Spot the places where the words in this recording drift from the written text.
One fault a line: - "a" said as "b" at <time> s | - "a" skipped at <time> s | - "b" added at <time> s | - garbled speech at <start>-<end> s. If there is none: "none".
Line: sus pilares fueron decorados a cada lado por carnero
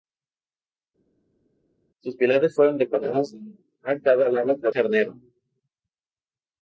none